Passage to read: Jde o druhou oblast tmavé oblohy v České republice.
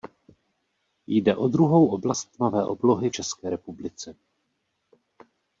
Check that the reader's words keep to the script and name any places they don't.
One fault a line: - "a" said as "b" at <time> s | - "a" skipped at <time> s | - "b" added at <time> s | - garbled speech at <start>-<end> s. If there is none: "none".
- "v" skipped at 3.1 s